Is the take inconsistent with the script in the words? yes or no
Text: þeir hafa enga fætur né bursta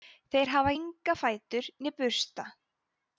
no